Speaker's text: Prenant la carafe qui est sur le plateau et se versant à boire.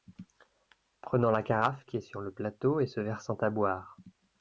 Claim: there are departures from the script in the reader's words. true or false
false